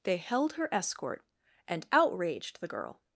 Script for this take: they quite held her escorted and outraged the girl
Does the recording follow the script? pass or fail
fail